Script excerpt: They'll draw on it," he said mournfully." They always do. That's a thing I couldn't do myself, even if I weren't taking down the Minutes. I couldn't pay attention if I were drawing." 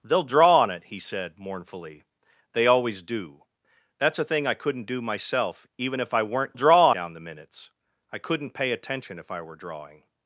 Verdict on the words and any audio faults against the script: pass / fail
fail